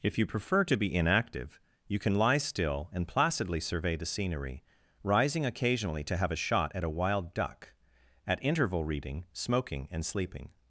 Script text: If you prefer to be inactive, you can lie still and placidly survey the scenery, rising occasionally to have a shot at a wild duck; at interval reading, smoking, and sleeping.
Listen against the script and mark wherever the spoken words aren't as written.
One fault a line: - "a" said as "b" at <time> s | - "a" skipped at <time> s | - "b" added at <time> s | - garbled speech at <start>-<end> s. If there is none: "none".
none